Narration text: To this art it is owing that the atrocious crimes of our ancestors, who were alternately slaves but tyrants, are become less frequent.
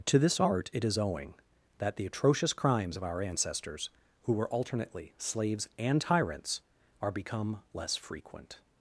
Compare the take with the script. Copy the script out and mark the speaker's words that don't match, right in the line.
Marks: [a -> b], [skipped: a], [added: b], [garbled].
To this art it is owing that the atrocious crimes of our ancestors, who were alternately slaves [but -> and] tyrants, are become less frequent.